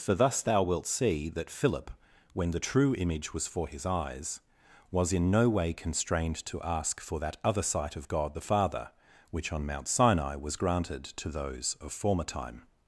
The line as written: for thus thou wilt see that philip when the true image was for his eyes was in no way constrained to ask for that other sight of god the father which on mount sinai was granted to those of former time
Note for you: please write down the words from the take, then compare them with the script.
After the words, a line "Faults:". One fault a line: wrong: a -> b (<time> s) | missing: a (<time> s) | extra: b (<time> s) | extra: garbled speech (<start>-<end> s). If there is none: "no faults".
for thus thou wilt see that philip when the true image was for his eyes was in no way constrained to ask for that other sight of god the father which on mount sinai was granted to those of former time
Faults:
no faults